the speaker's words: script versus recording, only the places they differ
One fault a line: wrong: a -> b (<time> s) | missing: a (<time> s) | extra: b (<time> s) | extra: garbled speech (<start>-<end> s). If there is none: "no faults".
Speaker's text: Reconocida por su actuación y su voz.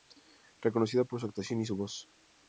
no faults